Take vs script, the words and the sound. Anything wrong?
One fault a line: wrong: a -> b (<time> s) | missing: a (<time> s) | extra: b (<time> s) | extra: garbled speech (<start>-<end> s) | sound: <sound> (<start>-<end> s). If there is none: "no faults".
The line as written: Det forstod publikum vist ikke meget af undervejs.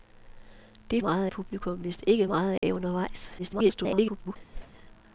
wrong: forstod -> meget (1.0 s)
sound: dropout (2.6-2.6 s)
extra: garbled speech (3.4-4.4 s)
sound: whoosh (4.5-4.7 s)